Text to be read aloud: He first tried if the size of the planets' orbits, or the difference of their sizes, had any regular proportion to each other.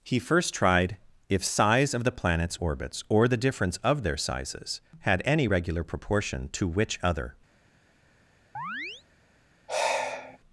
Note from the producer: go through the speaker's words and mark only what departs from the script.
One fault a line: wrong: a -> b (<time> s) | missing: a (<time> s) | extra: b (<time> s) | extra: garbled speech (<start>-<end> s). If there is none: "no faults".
missing: the (1.4 s)
wrong: each -> which (6.7 s)